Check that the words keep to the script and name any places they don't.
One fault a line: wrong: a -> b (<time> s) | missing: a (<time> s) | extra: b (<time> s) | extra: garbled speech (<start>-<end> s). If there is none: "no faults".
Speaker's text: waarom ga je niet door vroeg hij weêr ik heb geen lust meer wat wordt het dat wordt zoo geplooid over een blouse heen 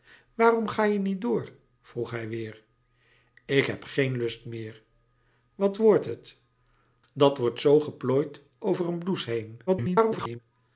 extra: garbled speech (9.7-10.4 s)